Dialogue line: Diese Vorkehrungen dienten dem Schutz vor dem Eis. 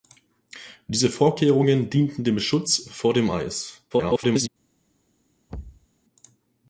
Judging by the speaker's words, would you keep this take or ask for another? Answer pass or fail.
fail